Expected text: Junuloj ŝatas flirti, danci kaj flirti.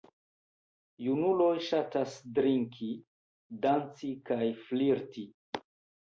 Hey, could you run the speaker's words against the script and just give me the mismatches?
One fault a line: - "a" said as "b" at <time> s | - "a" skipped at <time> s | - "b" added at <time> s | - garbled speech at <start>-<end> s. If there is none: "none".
- "flirti" said as "drinki" at 2.4 s